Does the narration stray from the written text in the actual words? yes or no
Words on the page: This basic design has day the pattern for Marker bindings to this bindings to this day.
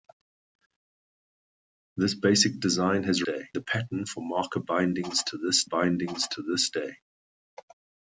no